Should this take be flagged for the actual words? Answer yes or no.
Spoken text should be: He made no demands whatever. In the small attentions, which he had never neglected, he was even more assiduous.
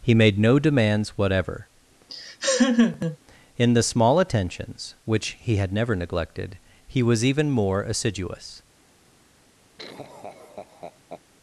no